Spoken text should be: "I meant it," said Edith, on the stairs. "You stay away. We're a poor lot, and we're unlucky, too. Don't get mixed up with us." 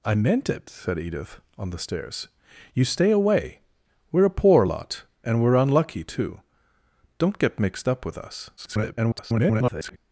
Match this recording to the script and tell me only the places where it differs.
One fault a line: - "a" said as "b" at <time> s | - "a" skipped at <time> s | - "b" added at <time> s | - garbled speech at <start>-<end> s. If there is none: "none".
- garbled speech at 8.6-10.0 s